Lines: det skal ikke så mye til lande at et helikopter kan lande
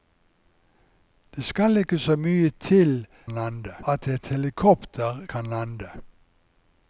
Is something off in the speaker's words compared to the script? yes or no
no